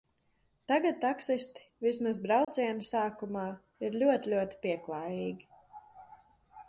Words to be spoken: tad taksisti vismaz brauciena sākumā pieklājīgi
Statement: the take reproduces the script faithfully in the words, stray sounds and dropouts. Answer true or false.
false